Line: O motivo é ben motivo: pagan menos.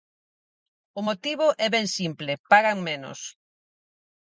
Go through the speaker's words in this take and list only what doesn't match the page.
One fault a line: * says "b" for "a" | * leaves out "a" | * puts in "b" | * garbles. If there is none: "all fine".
* says "simple" for "motivo"